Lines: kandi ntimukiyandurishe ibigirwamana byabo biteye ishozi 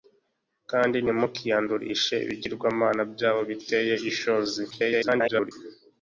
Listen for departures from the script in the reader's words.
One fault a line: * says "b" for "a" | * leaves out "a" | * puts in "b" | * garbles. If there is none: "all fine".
* garbles